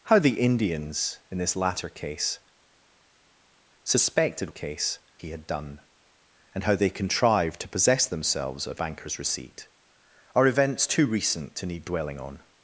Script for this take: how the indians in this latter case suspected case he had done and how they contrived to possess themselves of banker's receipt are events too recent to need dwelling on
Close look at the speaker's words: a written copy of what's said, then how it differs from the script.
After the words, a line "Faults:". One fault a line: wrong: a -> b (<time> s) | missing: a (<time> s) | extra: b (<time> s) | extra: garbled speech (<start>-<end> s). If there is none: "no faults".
how the indians in this latter case suspected case he had done and how they contrived to possess themselves of banker's receipt are events too recent to need dwelling on
Faults:
no faults